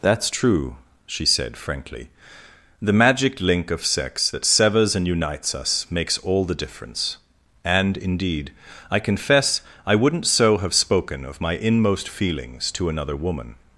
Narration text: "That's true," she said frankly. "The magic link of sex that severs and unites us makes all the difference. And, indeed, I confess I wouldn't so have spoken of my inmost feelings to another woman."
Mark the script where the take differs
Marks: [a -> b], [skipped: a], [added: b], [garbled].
"That's true," she said frankly. "The magic link of sex that severs and unites us makes all the difference. And, indeed, I confess I wouldn't so have spoken of my inmost feelings to another woman."